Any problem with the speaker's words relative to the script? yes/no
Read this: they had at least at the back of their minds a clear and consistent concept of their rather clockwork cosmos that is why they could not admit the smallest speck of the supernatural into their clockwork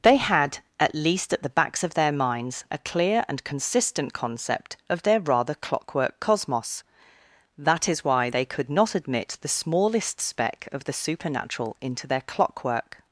yes